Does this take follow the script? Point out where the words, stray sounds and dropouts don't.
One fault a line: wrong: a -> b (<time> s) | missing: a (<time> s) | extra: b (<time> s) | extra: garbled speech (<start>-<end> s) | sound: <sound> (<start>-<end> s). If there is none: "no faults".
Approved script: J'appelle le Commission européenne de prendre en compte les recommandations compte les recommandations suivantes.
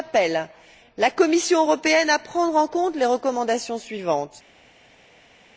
wrong: le -> la (1.0 s)
wrong: de -> à (2.1 s)
missing: compte les recommandations (3.8 s)